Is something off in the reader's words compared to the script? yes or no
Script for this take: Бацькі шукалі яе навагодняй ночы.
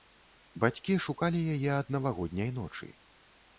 yes